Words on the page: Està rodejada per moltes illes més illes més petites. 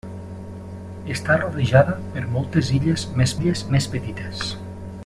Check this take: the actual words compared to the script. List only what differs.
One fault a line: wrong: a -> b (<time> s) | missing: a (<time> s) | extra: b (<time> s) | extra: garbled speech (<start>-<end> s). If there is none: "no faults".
no faults